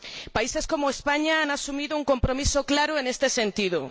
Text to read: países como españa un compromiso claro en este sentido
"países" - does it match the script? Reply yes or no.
yes